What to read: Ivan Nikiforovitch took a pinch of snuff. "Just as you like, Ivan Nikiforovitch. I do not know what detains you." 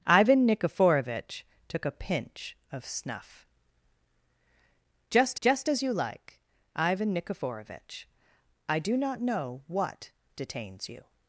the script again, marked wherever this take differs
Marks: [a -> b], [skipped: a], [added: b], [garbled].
Ivan Nikiforovitch took a pinch of snuff. "Just [added: just] as you like, Ivan Nikiforovitch. I do not know what detains you."